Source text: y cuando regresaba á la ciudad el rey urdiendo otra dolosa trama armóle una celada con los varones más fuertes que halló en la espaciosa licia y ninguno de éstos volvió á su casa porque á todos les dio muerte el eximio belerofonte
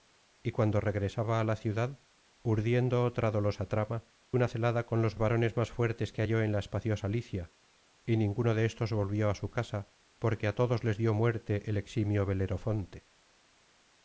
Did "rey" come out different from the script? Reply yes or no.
yes